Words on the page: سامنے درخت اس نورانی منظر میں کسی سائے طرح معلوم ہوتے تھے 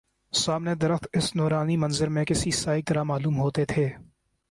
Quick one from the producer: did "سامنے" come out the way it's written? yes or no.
yes